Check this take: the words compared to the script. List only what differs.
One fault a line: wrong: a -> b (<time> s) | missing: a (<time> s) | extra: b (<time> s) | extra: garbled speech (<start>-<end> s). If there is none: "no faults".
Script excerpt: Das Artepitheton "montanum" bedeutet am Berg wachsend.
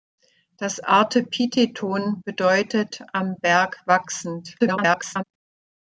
missing: montanum (2.2 s)
extra: garbled speech (4.6-5.2 s)